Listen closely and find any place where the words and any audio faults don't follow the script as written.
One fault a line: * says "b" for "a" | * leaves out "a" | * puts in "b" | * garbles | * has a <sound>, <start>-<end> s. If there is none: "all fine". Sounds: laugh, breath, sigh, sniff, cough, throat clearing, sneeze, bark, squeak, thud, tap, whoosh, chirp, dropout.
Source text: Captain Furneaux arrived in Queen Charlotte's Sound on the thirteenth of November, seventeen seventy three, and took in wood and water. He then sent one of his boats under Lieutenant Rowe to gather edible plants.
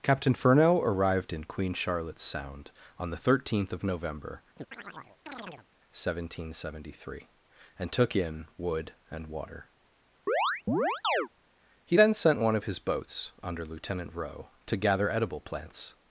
* has a chirp, 4.6-5.7 s
* has a chirp, 10.3-11.3 s